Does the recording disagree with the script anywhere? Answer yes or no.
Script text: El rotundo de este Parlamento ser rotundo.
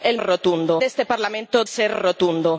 no